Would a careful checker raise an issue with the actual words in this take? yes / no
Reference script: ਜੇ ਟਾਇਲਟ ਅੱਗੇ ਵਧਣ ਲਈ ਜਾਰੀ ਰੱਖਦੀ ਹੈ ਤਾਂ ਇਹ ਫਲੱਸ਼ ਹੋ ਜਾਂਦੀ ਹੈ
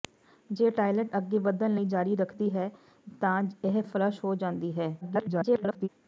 yes